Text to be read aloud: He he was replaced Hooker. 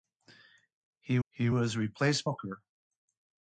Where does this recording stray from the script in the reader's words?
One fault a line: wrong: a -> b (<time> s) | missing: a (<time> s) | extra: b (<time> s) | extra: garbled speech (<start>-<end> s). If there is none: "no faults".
no faults